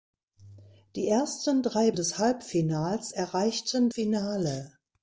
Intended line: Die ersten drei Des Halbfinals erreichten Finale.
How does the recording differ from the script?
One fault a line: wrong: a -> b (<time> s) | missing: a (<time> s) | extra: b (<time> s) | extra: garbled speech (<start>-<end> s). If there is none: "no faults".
no faults